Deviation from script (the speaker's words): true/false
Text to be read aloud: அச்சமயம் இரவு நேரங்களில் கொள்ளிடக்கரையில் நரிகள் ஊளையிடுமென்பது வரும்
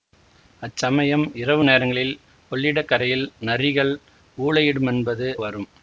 false